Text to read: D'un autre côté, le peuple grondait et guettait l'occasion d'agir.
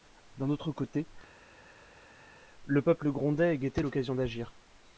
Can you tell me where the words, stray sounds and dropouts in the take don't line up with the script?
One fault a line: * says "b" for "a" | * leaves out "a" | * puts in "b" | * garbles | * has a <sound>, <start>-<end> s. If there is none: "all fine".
all fine